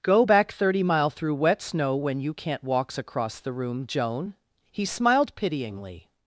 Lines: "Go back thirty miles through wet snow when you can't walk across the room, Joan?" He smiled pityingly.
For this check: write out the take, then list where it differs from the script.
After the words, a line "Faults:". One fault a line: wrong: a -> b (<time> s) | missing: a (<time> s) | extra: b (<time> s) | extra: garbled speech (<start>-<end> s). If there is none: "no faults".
"Go back thirty mile through wet snow when you can't walks across the room, Joan?" He smiled pityingly.
Faults:
wrong: miles -> mile (0.8 s)
wrong: walk -> walks (2.6 s)